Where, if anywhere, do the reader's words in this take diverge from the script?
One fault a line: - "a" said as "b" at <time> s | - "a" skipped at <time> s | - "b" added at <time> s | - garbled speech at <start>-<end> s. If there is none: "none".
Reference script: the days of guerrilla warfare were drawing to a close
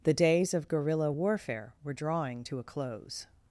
none